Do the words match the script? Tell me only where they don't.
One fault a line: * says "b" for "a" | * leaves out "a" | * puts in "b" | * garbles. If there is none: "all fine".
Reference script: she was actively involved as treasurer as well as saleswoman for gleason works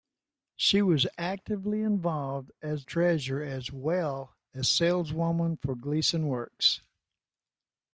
all fine